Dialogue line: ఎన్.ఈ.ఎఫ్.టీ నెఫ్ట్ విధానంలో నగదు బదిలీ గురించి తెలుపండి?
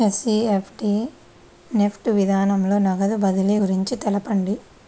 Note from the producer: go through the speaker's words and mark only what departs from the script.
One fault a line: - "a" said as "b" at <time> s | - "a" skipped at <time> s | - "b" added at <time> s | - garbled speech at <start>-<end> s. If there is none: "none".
none